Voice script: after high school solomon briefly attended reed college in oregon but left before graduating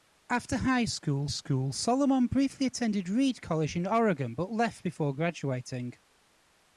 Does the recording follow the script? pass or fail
fail